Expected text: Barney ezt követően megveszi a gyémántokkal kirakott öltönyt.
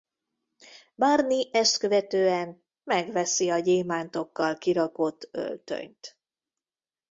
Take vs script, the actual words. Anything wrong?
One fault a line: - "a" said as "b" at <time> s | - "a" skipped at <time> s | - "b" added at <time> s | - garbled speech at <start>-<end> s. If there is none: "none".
none